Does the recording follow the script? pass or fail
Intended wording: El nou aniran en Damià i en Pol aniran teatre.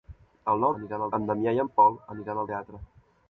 pass